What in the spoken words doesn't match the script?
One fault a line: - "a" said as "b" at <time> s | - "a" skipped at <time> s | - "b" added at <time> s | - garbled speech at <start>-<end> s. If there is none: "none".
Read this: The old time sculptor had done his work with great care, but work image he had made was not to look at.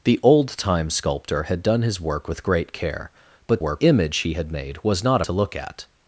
none